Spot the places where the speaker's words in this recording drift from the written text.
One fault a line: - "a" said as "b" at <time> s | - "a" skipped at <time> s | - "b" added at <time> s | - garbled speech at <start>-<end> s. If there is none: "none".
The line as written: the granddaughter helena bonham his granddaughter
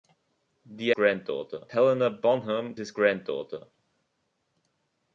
none